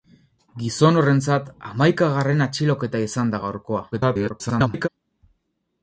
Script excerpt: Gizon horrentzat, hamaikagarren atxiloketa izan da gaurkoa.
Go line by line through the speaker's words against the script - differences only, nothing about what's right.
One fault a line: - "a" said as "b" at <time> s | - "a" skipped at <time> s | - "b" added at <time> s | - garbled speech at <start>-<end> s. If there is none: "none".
- garbled speech at 3.9-4.9 s